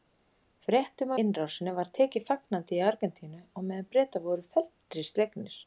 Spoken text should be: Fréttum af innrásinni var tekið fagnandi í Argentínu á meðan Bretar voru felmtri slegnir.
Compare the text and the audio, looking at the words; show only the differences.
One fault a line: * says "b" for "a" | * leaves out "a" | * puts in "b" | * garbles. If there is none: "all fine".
* leaves out "af"